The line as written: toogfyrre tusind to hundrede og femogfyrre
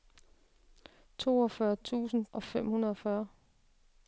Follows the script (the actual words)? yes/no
no